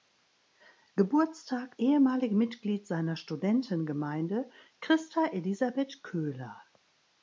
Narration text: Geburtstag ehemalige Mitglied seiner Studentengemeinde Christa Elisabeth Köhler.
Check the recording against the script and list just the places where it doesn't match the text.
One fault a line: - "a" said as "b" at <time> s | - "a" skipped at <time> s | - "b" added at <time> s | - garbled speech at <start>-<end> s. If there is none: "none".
none